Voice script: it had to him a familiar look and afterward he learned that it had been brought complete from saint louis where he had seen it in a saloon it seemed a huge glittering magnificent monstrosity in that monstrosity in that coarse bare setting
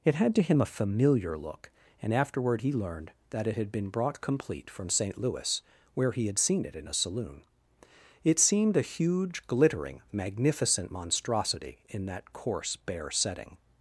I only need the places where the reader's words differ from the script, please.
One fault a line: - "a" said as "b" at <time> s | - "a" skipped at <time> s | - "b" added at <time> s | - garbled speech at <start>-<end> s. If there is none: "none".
- "monstrosity in that" skipped at 12.3 s